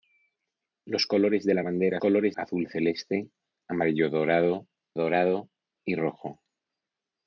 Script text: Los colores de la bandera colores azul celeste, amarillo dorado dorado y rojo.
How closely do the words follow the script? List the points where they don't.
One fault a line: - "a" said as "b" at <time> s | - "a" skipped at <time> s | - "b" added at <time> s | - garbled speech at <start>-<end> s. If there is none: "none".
none